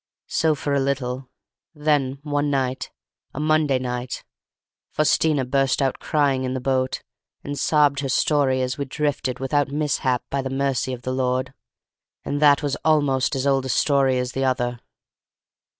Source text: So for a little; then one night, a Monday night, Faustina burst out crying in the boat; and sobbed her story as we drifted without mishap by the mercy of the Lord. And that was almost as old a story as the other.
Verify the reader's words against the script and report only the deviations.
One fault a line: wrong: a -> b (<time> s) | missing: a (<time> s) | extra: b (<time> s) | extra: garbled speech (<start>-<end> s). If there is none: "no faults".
no faults